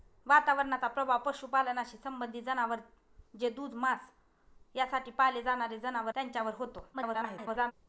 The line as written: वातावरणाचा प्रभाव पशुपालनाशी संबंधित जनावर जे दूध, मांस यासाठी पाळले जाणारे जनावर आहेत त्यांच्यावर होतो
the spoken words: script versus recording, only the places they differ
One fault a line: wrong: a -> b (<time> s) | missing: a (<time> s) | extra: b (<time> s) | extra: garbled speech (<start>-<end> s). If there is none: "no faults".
missing: आहेत (6.1 s)
extra: garbled speech (6.9-7.7 s)